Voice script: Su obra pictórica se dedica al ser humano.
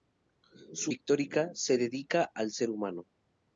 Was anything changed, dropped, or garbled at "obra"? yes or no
yes